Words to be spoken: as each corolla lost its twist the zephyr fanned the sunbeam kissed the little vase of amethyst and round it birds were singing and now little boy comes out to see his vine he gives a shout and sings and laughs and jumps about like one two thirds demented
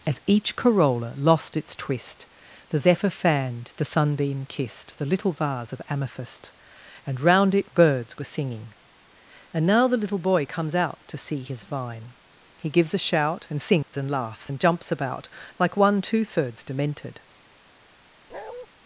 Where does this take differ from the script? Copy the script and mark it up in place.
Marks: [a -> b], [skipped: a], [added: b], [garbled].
as each corolla lost its twist the zephyr fanned the sunbeam kissed the little vase of amethyst and round it birds were singing and now [added: the] little boy comes out to see his vine he gives a shout and sings and laughs and jumps about like one two thirds demented